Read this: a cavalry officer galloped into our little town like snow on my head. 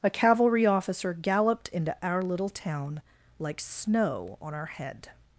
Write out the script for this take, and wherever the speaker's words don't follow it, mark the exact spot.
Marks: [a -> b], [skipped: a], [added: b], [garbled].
a cavalry officer galloped into our little town like snow on [my -> our] head.